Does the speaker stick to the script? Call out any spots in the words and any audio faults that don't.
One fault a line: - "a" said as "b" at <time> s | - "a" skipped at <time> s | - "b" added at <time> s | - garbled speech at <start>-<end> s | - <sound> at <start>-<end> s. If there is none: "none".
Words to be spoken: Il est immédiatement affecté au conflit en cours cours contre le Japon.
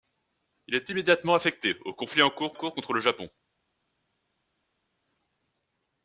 none